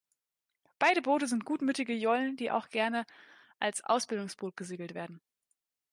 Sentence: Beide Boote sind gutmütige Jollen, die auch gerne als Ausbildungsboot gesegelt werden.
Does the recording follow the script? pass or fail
pass